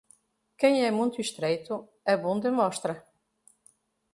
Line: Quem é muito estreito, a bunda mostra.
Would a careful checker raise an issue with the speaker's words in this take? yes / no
no